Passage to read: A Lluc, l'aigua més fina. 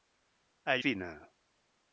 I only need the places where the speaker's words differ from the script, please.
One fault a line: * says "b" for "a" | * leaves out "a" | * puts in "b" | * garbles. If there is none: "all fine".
* leaves out "Lluc l'aigua més"